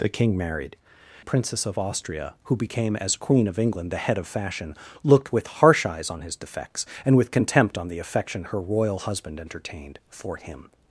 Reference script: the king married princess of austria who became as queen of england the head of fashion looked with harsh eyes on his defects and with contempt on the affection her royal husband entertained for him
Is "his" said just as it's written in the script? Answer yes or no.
yes